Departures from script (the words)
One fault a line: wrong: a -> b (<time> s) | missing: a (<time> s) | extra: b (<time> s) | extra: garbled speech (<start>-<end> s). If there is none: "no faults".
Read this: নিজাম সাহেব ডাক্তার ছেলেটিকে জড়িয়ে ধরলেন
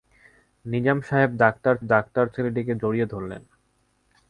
extra: ডাক্তার (1.9 s)